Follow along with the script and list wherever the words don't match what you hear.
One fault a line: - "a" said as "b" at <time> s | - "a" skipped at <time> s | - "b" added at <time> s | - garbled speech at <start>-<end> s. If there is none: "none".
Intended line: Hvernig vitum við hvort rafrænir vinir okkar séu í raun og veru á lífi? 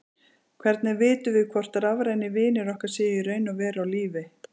none